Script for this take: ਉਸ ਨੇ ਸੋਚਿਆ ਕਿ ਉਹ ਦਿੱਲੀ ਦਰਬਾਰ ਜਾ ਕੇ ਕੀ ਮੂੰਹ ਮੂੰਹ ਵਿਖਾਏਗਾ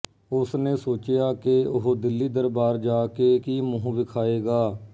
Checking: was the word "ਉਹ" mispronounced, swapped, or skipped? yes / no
no